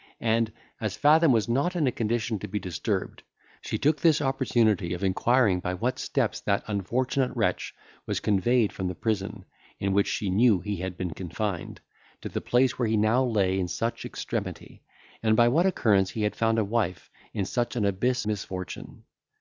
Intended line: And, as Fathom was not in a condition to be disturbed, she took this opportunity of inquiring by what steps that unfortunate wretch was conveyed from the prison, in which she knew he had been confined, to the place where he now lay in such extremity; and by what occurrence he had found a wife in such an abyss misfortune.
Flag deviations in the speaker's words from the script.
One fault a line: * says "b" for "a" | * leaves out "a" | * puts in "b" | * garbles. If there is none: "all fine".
all fine